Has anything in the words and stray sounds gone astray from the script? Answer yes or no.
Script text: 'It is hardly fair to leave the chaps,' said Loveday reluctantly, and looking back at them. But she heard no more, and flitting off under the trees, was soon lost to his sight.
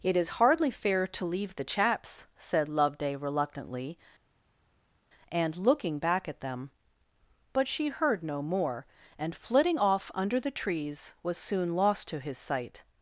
no